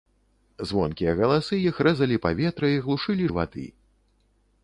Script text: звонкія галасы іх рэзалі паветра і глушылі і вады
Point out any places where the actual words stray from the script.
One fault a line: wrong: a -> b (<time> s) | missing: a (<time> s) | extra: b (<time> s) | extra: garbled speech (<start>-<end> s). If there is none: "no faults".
no faults